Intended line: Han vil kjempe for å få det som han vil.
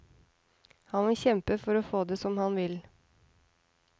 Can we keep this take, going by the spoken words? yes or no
yes